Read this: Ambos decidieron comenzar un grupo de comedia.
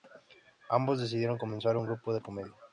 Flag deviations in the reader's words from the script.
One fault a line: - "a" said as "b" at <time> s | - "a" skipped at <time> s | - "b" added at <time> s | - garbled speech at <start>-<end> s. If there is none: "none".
none